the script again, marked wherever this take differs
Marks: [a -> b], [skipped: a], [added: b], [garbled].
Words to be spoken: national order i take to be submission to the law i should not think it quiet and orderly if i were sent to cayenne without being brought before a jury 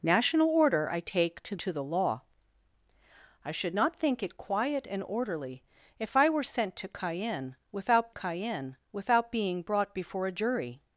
national order i take to [skipped: be submission] to the law i should not think it quiet and orderly if i were sent to cayenne without [added: cayenne without] being brought before a jury